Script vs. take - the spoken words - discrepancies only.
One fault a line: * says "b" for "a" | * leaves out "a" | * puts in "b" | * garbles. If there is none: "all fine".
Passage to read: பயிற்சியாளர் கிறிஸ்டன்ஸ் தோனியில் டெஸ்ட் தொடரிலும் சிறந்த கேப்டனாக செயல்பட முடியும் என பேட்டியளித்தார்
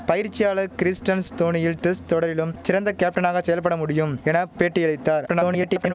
* garbles